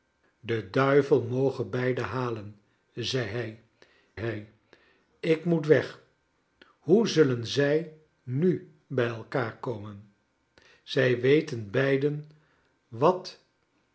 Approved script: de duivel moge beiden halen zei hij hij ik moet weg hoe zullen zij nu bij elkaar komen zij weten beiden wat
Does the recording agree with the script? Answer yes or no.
yes